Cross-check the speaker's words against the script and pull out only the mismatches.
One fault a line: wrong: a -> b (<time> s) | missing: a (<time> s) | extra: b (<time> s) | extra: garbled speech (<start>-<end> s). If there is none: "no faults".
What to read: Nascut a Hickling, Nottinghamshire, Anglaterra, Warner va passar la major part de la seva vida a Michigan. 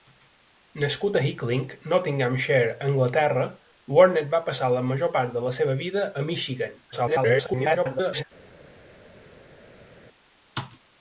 extra: garbled speech (6.9-8.2 s)